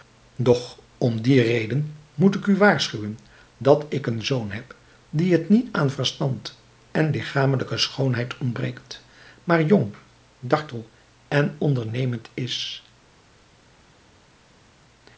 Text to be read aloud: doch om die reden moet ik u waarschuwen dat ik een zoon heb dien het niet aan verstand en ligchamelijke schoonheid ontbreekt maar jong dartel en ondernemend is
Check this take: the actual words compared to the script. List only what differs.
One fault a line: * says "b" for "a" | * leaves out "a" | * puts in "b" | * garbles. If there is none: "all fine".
all fine